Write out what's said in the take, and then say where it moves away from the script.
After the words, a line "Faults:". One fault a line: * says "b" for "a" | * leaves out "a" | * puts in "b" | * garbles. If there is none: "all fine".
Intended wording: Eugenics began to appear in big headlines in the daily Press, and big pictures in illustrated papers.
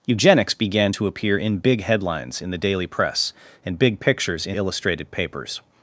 Eugenics began to appear in big headlines in the daily Press, and big pictures in illustrated papers.
Faults:
all fine